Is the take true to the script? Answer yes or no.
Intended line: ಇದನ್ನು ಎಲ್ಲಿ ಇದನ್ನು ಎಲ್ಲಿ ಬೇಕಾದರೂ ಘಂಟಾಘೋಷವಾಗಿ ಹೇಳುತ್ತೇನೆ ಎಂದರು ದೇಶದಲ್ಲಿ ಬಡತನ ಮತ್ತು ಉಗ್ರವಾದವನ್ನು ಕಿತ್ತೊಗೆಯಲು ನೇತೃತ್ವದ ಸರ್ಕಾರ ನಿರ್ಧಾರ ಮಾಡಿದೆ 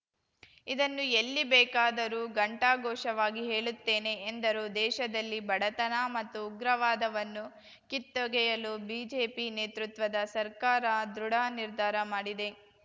no